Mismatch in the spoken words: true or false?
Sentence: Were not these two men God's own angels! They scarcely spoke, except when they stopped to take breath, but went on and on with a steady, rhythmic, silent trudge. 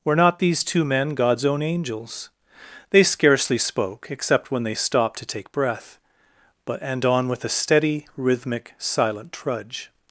true